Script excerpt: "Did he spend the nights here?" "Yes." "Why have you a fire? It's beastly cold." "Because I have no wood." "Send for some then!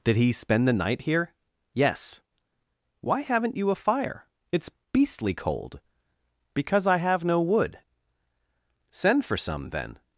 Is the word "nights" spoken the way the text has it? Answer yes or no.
no